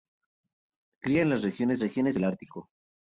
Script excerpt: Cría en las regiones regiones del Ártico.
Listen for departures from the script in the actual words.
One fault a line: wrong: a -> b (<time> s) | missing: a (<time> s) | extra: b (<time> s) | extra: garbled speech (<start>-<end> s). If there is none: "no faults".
no faults